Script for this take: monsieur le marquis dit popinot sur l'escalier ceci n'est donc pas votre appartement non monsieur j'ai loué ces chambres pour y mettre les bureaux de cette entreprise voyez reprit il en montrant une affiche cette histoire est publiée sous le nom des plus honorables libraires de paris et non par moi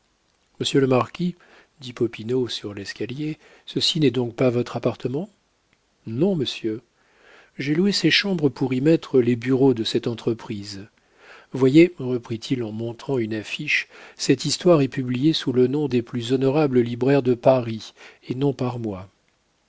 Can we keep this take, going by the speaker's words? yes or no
yes